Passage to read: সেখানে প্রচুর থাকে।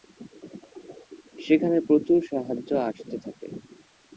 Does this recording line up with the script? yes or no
no